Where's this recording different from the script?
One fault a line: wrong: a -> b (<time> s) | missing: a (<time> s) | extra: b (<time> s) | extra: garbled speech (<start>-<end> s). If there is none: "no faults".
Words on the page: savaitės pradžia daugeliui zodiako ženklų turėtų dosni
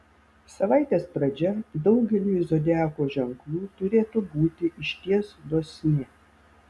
extra: būti išties (4.3 s)